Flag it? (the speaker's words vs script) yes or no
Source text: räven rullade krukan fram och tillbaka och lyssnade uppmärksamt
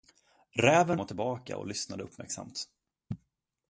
yes